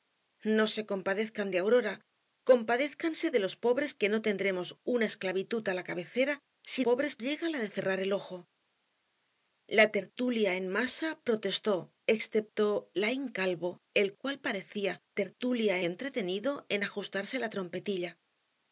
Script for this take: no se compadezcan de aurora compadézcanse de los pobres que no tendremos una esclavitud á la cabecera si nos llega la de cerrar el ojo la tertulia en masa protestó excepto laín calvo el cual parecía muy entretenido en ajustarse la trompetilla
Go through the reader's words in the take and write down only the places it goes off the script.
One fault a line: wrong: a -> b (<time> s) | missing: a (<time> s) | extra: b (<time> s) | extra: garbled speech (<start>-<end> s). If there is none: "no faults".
wrong: nos -> pobres (6.9 s)
wrong: muy -> tertulia (15.2 s)